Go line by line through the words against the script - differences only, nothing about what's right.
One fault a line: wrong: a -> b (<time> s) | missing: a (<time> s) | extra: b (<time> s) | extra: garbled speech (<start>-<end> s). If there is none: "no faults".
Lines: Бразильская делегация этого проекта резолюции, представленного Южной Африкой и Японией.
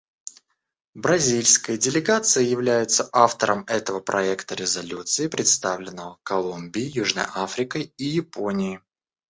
extra: является автором (2.4 s)
extra: Колумбией (6.2 s)